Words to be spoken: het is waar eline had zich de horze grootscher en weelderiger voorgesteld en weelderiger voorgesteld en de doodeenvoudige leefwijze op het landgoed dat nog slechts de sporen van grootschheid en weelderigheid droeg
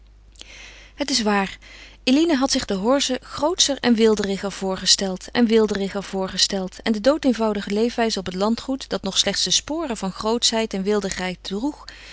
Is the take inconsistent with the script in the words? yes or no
no